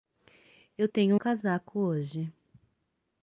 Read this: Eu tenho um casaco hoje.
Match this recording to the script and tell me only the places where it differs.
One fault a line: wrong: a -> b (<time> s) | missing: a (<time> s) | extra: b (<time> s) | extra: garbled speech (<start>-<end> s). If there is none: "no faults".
no faults